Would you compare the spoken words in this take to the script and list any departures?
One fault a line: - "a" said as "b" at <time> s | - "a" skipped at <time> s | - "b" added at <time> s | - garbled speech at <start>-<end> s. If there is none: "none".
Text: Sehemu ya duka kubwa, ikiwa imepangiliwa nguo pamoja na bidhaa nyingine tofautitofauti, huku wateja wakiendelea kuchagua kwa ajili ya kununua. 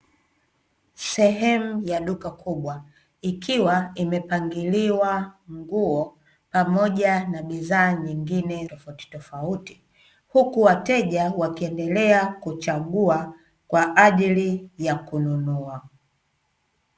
none